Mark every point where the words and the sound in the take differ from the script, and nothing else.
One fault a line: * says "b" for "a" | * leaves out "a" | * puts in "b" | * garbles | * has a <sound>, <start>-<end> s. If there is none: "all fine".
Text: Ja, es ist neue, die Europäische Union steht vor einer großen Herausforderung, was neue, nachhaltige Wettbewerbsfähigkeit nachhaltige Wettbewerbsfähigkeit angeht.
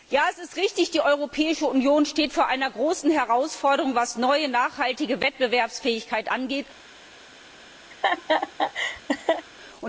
* says "richtig" for "neue"
* leaves out "nachhaltige Wettbewerbsfähigkeit"
* has a laugh, 7.9-9.5 s